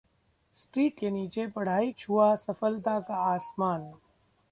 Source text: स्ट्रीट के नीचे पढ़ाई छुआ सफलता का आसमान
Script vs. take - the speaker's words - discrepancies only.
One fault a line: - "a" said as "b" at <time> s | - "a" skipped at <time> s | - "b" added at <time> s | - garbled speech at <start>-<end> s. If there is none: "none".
none